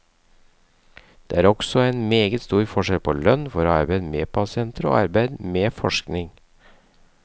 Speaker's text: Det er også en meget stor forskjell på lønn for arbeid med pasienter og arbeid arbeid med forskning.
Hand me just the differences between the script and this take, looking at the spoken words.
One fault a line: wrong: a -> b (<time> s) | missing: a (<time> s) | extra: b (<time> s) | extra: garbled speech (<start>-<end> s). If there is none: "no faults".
missing: arbeid (5.4 s)